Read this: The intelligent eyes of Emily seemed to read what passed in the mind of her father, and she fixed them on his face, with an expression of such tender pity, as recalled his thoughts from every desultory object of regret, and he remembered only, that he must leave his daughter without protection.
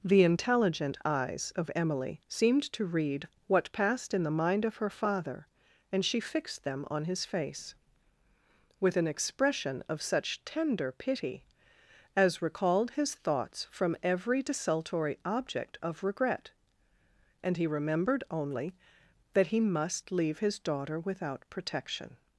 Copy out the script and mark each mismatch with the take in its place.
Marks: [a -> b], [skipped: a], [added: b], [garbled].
The intelligent eyes of Emily seemed to read what passed in the mind of her father, and she fixed them on his face, with an expression of such tender pity, as recalled his thoughts from every desultory object of regret, and he remembered only, that he must leave his daughter without protection.